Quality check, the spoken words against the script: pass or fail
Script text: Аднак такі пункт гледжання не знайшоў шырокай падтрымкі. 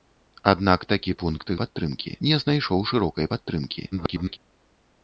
fail